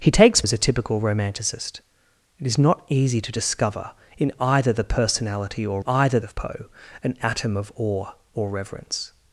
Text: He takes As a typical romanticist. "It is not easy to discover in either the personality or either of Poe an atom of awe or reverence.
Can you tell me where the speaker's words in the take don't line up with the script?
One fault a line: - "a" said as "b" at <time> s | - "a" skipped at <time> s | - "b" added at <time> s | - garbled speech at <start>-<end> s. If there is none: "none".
none